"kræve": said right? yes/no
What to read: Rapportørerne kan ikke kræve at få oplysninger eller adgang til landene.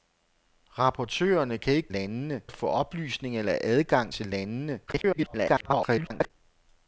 no